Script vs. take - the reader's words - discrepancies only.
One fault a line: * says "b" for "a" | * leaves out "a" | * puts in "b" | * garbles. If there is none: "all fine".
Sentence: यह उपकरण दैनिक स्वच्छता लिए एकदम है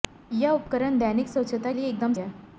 all fine